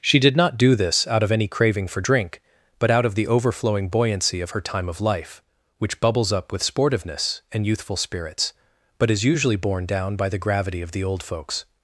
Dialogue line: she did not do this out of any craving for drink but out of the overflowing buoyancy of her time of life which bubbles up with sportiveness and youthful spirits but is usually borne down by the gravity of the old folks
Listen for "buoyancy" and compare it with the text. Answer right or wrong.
right